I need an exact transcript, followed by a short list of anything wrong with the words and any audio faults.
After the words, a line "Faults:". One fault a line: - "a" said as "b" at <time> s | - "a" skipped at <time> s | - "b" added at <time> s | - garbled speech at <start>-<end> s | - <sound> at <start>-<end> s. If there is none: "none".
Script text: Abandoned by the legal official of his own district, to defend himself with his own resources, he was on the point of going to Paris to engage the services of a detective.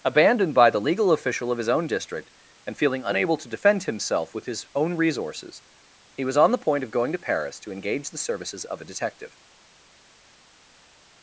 Abandoned by the legal official of his own district, and feeling unable to defend himself with his own resources, he was on the point of going to Paris to engage the services of a detective.
Faults:
- "and feeling unable" added at 2.6 s